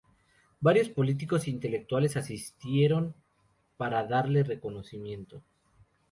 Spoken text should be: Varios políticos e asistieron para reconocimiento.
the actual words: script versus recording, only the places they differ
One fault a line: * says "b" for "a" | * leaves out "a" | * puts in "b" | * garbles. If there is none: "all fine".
* puts in "intelectuales"
* puts in "darle"